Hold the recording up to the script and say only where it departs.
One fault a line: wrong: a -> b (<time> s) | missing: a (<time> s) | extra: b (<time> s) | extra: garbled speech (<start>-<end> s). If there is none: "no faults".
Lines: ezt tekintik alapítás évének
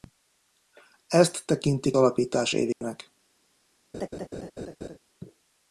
no faults